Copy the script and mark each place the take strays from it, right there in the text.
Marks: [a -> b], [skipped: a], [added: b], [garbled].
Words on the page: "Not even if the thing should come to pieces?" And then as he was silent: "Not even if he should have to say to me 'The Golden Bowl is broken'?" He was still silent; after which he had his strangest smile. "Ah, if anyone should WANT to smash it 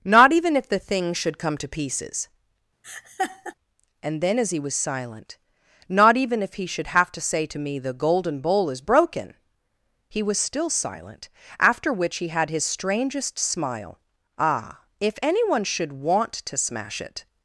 "Not even if the thing should come to pieces?" And then as he was silent: "Not even if he should have to say to me 'The Golden Bowl is broken'?" He was still silent; after which he had his strangest smile. "Ah, if anyone should WANT to smash it